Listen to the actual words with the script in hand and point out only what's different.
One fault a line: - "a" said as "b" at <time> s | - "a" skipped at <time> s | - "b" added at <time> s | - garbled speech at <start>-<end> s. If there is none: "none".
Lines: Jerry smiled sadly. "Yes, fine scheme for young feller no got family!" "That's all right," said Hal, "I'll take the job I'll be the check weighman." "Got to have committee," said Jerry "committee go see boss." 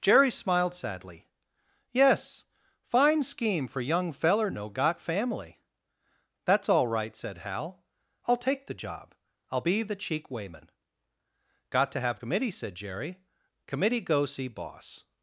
- "check" said as "cheek" at 9.9 s